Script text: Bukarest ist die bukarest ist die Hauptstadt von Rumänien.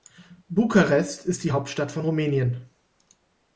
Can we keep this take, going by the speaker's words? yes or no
no